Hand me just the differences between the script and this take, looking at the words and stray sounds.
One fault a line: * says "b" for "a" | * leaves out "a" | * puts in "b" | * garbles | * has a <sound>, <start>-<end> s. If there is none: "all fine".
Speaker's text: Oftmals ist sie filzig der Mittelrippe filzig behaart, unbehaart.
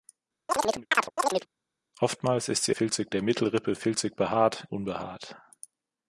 * has a chirp, 0.5-1.5 s